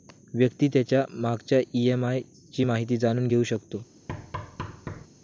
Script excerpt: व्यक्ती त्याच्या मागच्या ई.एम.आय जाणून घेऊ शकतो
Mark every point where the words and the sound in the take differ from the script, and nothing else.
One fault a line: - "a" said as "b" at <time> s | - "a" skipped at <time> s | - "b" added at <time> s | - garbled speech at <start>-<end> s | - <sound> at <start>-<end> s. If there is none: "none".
- "ची माहिती" added at 2.5 s
- thud at 4.1-5.1 s